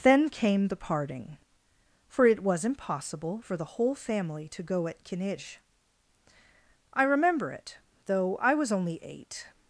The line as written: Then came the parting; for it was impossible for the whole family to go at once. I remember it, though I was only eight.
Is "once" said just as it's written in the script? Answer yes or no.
no